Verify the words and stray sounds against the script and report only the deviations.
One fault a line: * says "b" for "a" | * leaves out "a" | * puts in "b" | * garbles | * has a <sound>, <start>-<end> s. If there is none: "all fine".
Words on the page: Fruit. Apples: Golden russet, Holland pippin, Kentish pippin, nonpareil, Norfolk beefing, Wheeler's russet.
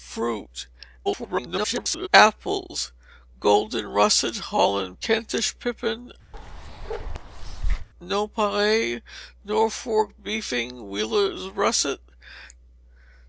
* garbles
* leaves out "pippin"
* has a bark, 6.3-7.9 s